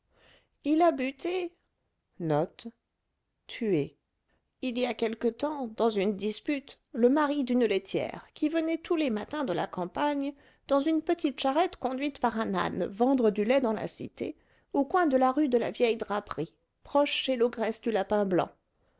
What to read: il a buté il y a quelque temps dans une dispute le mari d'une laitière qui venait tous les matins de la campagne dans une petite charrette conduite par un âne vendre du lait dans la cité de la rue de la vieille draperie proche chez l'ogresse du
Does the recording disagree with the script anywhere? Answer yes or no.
yes